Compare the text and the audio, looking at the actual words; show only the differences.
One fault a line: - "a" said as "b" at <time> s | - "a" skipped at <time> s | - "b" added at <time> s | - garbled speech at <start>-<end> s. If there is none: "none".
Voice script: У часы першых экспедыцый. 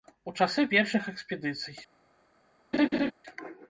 none